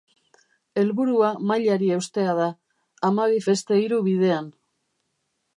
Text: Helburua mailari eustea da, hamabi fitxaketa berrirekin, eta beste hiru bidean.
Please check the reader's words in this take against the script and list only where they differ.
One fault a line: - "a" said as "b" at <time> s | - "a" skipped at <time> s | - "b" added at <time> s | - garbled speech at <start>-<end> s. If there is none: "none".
- "fitxaketa berrirekin eta" skipped at 3.4 s